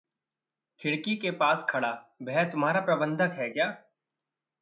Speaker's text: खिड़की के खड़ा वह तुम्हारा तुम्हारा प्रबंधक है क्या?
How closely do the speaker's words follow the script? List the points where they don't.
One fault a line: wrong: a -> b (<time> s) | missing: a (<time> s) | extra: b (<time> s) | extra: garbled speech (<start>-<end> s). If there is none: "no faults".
extra: पास (1.3 s)
missing: तुम्हारा (2.8 s)